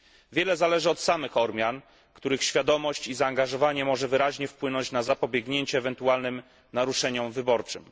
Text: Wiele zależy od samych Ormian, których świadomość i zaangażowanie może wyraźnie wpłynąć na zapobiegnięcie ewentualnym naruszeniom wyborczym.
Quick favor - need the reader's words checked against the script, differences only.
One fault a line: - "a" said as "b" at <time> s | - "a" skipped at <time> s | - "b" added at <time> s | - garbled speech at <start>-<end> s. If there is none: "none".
none